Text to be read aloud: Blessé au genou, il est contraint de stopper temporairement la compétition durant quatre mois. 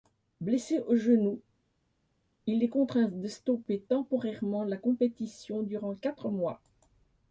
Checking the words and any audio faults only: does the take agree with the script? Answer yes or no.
yes